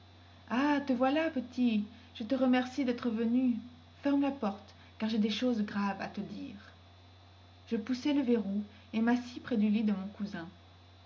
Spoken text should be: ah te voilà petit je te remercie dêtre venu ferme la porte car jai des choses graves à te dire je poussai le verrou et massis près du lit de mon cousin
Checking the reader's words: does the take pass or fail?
pass